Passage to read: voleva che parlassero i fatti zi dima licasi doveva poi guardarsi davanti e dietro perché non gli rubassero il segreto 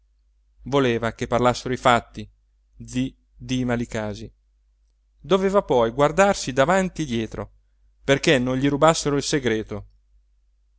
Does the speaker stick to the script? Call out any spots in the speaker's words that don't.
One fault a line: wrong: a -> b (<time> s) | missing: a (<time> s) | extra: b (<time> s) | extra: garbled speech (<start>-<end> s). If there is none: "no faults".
no faults